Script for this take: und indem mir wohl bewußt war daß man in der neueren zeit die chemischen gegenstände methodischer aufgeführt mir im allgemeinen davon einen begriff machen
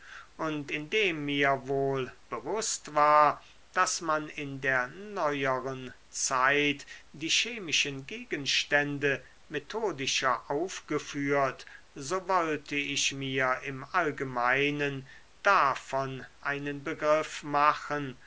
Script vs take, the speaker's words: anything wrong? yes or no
yes